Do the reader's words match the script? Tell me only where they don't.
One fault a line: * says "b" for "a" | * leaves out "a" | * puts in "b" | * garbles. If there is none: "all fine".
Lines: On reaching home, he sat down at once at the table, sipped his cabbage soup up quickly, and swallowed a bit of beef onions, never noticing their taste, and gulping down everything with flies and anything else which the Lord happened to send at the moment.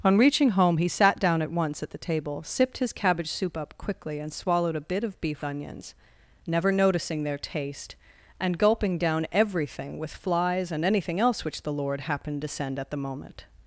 all fine